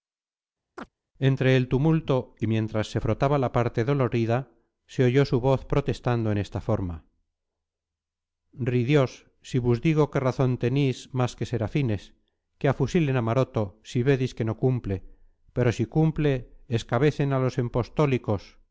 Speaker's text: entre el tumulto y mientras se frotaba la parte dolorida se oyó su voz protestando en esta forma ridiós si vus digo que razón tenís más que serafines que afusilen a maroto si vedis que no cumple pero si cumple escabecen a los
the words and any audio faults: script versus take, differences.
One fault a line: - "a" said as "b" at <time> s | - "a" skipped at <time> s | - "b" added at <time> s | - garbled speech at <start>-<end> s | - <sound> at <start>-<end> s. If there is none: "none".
- chirp at 0.8-0.9 s